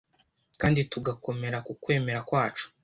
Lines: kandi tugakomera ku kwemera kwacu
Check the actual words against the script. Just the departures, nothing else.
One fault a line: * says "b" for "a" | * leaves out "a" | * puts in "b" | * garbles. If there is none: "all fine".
all fine